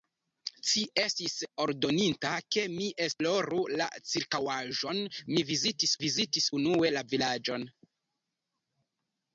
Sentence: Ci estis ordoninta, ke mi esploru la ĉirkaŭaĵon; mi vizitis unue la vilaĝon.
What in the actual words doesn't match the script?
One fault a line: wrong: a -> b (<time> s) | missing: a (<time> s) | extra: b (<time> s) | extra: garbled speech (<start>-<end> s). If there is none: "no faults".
extra: vizitis (6.0 s)